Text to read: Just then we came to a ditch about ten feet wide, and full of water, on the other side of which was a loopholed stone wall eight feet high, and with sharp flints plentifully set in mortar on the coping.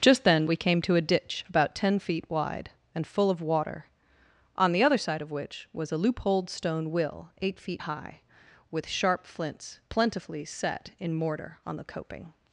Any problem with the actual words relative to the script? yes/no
yes